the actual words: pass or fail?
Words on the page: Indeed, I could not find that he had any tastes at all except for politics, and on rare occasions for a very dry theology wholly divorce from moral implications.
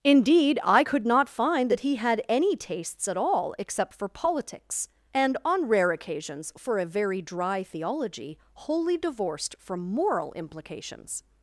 fail